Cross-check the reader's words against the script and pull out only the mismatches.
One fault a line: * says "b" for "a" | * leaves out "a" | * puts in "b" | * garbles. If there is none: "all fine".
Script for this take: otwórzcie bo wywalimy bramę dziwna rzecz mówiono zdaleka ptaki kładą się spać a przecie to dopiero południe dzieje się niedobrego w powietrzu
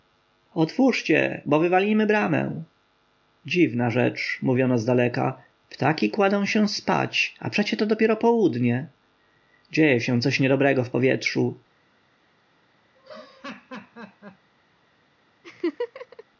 * puts in "coś"